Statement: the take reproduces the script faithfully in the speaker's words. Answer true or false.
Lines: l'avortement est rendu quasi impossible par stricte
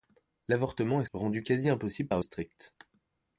true